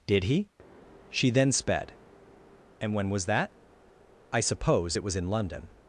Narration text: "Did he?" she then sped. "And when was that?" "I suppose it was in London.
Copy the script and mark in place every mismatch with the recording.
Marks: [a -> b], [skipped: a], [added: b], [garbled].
"Did he?" she then sped. "And when was that?" "I suppose it was in London.